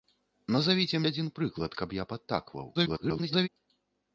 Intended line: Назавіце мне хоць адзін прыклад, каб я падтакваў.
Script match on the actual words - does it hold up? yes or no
no